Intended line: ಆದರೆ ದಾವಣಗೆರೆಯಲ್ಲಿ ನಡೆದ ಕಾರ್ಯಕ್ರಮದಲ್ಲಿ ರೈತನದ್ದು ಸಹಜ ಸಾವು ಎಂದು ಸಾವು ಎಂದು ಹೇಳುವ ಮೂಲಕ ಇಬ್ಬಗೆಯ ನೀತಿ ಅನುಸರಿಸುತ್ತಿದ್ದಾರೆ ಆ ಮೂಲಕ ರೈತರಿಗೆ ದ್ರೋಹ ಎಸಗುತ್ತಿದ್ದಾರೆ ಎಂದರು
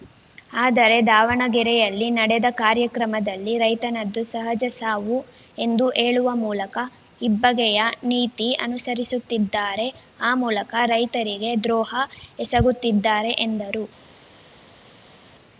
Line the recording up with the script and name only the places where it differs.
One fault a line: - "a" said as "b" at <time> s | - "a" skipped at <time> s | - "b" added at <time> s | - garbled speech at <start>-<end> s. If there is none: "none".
- "ಸಾವು ಎಂದು" skipped at 5.9 s